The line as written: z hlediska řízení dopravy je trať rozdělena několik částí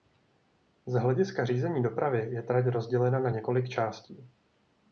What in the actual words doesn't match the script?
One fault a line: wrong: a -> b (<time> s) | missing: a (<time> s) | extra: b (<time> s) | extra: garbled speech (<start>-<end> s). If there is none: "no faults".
extra: na (3.2 s)